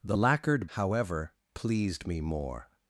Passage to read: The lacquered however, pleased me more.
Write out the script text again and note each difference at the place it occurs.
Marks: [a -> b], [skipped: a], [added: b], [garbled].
The lacquered however, pleased me more.